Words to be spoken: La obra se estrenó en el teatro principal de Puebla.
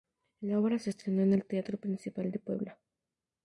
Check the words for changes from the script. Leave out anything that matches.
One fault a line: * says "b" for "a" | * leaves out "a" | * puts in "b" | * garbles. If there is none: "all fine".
all fine